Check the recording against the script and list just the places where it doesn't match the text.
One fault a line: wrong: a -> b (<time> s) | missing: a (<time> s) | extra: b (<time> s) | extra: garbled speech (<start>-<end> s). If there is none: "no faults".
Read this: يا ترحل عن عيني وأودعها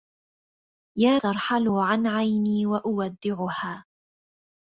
no faults